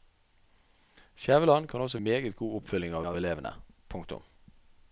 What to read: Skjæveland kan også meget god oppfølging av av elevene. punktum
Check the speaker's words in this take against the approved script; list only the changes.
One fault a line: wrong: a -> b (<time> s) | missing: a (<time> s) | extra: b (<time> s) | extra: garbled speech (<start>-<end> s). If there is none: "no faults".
no faults